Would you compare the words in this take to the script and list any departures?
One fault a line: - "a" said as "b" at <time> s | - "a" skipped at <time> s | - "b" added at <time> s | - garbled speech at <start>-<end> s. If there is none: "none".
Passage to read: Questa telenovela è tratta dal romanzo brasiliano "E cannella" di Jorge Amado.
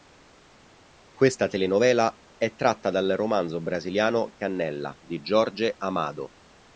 none